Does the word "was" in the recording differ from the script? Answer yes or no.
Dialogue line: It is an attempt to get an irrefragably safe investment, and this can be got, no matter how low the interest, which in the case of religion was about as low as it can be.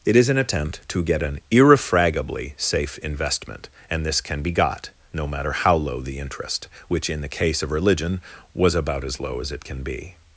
no